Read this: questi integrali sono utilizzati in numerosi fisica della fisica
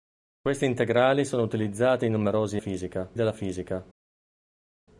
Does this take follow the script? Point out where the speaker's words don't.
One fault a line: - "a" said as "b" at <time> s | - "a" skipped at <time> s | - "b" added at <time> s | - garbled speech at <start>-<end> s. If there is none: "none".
none